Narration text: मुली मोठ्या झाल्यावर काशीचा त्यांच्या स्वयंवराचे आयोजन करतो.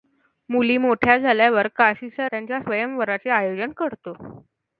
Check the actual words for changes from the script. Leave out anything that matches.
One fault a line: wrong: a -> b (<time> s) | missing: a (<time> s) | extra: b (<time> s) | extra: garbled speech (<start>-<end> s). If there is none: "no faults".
no faults